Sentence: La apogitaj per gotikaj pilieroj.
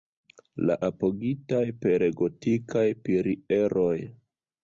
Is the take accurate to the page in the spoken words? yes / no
yes